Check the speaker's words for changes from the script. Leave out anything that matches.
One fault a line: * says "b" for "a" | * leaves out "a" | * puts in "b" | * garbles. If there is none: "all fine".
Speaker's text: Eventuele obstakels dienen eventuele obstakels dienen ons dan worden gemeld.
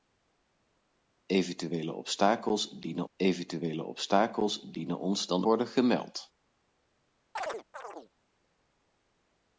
all fine